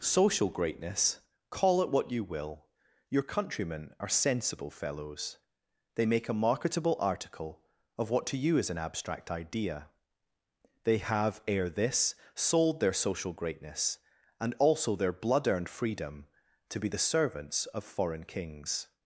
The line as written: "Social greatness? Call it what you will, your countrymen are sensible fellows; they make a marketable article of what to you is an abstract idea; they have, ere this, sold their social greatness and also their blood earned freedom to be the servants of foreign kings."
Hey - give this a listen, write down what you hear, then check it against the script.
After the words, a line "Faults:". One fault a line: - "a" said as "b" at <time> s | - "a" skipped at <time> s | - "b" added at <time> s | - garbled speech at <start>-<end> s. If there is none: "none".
"Social greatness? Call it what you will, your countrymen are sensible fellows; they make a marketable article of what to you is an abstract idea; they have, ere this, sold their social greatness and also their blood earned freedom to be the servants of foreign kings."
Faults:
none